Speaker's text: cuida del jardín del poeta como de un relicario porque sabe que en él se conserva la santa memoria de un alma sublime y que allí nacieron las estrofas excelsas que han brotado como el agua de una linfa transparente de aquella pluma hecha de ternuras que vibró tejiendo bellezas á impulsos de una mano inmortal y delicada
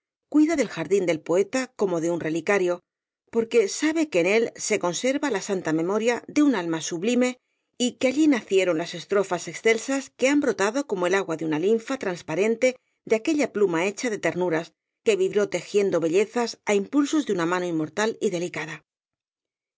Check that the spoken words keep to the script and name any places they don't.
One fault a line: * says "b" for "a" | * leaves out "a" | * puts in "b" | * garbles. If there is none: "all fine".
all fine